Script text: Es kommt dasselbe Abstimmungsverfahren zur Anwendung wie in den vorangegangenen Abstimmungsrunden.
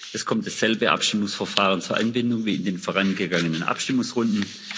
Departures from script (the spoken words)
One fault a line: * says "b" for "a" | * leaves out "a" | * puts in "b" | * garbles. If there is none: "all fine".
all fine